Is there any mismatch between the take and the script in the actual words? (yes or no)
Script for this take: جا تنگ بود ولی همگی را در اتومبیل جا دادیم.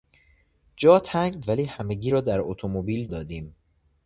yes